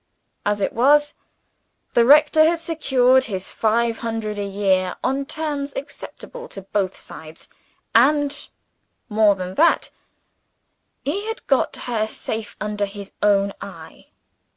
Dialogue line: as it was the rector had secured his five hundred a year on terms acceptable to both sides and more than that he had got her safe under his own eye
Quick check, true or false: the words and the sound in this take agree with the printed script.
true